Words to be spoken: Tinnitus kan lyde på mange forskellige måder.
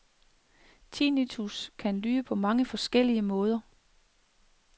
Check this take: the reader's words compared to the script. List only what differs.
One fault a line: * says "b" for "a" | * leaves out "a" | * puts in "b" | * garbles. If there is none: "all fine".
all fine